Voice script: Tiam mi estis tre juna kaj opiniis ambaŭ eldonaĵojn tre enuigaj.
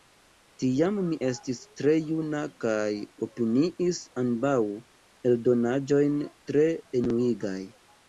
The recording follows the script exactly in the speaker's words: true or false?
true